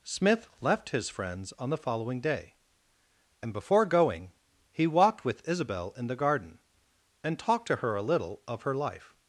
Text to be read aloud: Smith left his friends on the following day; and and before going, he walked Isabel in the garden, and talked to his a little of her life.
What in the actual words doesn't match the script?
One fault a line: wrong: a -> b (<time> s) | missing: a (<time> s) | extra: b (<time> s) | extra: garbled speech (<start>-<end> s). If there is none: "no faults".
missing: and (3.5 s)
extra: with (5.2 s)
wrong: his -> her (7.8 s)